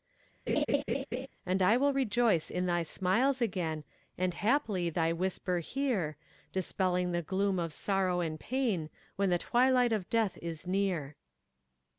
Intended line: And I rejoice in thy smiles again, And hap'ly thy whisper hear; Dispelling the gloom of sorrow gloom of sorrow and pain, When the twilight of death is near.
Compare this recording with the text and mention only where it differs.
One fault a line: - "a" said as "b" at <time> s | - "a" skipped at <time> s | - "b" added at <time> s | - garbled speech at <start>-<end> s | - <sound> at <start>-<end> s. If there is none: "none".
- laugh at 0.5-1.3 s
- "will" added at 1.8 s
- "gloom of sorrow" skipped at 8.2 s